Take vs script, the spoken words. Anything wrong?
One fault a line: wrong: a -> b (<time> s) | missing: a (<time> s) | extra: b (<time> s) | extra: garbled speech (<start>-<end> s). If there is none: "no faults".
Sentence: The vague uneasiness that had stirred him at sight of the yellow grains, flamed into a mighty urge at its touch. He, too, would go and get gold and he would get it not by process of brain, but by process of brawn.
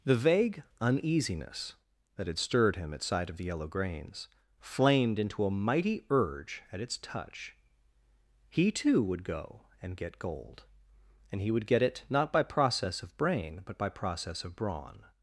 no faults